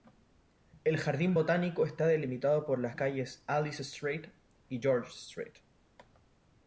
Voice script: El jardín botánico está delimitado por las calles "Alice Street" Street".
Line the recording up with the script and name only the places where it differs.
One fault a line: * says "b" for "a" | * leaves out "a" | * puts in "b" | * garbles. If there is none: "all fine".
* puts in "y George"